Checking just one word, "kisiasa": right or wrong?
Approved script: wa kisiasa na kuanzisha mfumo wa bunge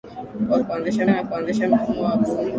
wrong